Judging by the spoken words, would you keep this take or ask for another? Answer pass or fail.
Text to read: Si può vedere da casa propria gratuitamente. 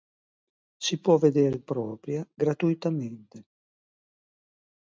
fail